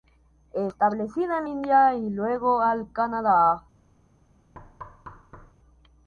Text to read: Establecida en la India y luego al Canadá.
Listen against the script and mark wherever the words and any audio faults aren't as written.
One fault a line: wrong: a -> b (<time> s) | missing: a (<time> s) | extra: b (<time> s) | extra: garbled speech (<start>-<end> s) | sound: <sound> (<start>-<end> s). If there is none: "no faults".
missing: la (1.4 s)
sound: thud (4.5-5.5 s)